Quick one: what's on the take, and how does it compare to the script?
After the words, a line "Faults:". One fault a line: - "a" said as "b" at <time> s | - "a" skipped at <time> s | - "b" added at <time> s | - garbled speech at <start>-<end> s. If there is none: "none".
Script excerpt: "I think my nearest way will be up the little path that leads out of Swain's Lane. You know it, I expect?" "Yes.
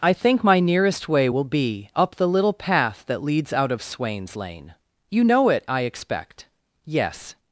"I think my nearest way will be up the little path that leads out of Swain's Lane. You know it, I expect?" "Yes.
Faults:
none